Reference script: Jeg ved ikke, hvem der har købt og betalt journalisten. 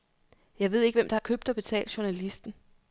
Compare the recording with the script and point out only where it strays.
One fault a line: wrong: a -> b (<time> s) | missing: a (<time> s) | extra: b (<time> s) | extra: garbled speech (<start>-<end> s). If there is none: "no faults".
no faults